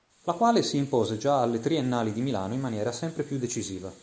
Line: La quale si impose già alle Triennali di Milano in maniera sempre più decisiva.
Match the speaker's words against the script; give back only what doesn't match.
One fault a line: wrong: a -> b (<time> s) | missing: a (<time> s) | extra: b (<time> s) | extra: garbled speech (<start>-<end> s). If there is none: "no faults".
no faults